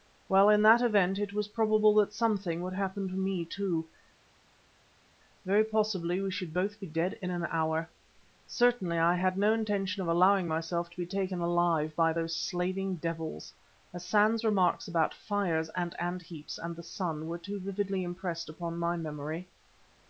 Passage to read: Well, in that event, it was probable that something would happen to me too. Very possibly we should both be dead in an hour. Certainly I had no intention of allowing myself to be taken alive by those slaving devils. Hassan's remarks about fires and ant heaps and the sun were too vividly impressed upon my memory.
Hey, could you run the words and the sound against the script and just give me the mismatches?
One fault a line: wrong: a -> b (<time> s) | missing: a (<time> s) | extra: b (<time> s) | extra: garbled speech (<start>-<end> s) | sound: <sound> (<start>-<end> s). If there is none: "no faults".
no faults